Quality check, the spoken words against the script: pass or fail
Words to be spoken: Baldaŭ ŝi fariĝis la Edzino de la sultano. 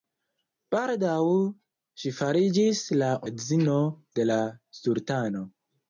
pass